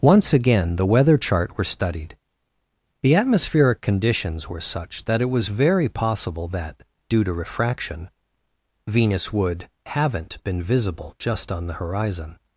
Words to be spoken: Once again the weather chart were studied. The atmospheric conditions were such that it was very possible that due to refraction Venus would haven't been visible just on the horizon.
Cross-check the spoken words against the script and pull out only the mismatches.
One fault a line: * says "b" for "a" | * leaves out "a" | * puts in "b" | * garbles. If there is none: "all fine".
all fine